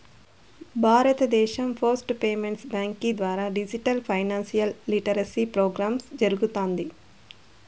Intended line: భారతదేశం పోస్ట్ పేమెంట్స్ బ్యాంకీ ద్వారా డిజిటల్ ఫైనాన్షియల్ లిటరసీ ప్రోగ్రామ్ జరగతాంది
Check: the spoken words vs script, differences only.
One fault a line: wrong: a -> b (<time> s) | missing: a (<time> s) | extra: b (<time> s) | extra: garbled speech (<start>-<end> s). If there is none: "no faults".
no faults